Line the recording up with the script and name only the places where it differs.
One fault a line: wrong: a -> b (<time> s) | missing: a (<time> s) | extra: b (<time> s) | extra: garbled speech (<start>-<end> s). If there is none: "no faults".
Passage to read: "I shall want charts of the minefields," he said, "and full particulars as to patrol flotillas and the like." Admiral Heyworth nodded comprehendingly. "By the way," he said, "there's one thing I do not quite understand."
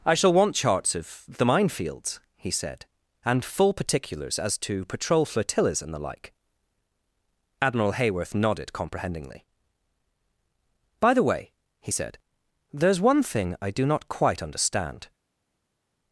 no faults